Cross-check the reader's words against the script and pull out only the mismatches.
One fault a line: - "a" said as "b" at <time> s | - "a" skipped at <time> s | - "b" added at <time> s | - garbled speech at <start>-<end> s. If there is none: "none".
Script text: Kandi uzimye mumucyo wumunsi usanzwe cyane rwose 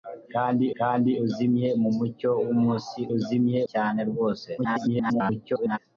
- "kandi" added at 0.8 s
- "usanzwe" said as "uzimye" at 3.2 s
- garbled speech at 4.6-5.8 s